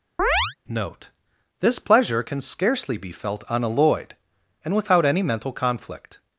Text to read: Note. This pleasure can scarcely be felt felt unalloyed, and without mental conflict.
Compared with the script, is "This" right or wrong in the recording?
right